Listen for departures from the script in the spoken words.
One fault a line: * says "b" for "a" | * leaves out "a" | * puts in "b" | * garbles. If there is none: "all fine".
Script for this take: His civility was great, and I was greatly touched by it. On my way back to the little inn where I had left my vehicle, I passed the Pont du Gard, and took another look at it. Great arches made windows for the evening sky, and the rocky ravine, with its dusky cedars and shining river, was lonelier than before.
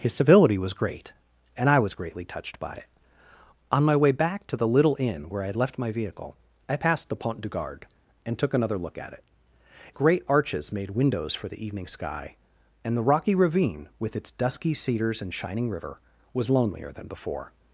all fine